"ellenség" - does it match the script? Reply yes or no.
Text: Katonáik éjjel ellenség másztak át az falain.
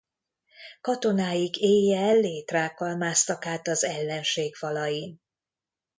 no